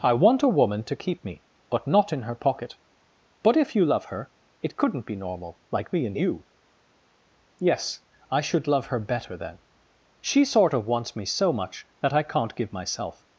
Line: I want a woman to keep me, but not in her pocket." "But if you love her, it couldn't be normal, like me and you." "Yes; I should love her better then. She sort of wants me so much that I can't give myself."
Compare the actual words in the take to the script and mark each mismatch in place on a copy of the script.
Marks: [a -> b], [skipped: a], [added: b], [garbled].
I want a woman to keep me, but not in her pocket." "But if you love her, it couldn't be normal, like me and you." "Yes; I should love her better then. She sort of wants me so much that I can't give myself."